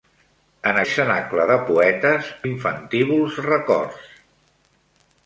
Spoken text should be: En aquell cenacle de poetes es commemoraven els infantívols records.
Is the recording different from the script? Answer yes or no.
yes